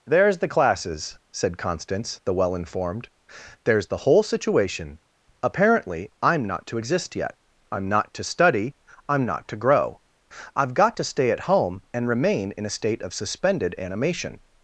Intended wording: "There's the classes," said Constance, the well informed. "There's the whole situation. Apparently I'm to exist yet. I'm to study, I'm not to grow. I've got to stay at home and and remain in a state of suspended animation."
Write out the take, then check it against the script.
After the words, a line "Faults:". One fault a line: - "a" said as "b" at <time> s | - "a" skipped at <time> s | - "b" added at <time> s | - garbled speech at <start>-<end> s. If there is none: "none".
"There's the classes," said Constance, the well informed. "There's the whole situation. Apparently I'm not to exist yet. I'm not to study, I'm not to grow. I've got to stay at home and remain in a state of suspended animation."
Faults:
- "not" added at 6.4 s
- "not" added at 7.9 s
- "and" skipped at 12.1 s